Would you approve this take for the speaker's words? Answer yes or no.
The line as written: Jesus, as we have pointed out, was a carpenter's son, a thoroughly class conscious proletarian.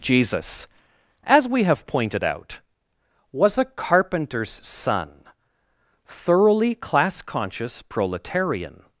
no